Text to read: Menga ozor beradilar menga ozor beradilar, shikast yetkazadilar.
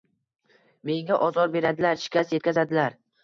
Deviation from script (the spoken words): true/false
true